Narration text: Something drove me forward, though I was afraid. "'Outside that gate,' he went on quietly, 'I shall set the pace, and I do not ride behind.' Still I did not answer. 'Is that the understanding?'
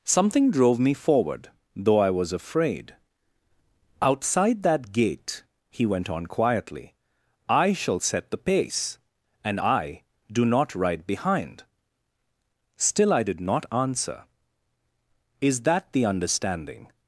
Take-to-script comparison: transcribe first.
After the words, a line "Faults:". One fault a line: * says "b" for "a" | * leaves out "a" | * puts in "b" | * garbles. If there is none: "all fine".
Something drove me forward, though I was afraid. "'Outside that gate,' he went on quietly, 'I shall set the pace, and I do not ride behind.' Still I did not answer. 'Is that the understanding?'
Faults:
all fine